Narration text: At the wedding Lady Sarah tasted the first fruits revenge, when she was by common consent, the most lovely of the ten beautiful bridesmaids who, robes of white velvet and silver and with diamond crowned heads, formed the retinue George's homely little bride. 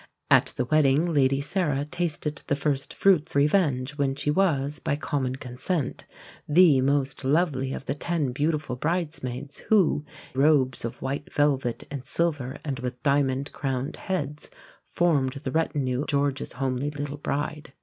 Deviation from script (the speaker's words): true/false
false